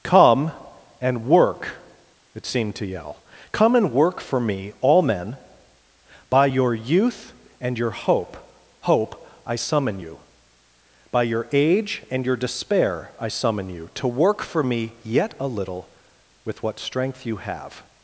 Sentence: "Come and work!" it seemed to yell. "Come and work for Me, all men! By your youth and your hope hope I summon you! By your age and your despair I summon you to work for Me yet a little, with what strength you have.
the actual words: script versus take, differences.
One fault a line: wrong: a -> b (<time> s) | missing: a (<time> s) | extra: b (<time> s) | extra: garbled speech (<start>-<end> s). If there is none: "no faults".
no faults